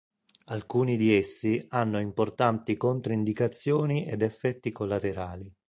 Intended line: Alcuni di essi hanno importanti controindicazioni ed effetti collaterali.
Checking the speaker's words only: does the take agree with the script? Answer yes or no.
yes